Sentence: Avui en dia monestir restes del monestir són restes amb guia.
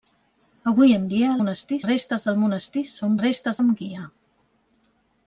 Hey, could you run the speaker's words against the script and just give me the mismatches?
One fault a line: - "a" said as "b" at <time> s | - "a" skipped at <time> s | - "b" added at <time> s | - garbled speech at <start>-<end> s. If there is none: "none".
none